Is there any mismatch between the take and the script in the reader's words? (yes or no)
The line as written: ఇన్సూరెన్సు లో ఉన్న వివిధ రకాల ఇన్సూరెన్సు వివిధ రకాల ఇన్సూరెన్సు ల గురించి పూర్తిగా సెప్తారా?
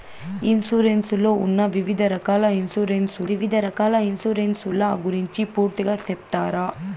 no